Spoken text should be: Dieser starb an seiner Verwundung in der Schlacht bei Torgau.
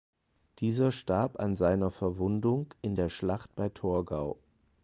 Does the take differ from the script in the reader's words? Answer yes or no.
no